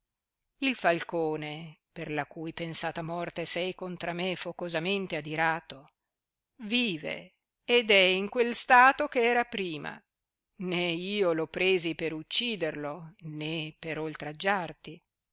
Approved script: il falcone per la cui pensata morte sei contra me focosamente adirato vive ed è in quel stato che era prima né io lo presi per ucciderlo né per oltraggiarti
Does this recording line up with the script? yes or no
yes